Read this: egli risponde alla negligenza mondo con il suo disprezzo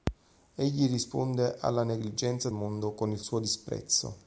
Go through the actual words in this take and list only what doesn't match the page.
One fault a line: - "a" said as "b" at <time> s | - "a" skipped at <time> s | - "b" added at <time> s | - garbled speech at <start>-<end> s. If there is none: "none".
none